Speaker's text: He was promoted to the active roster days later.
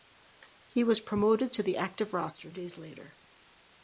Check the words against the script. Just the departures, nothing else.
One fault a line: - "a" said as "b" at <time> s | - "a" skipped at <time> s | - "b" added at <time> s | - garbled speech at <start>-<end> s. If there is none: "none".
none